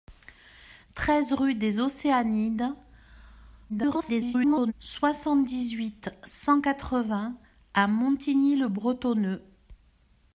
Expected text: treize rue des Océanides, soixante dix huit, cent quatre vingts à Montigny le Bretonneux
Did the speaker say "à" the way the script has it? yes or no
yes